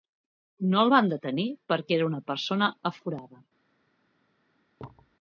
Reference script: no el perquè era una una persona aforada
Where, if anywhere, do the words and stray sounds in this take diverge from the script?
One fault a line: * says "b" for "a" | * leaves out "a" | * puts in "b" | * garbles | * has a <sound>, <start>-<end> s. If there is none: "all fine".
* puts in "van detenir"
* leaves out "una"
* has a thud, 4.8-5.2 s